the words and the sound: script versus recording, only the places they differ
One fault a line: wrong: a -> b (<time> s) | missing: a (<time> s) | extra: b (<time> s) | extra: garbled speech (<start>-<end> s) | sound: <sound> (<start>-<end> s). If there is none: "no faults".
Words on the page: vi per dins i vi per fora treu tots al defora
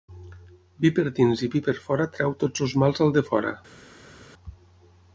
extra: els mals (2.7 s)